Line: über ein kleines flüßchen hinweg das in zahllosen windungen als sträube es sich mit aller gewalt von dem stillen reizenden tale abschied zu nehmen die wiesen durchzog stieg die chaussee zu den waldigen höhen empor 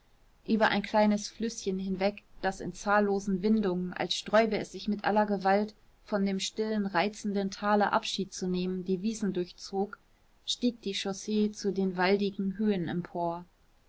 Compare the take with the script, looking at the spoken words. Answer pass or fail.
pass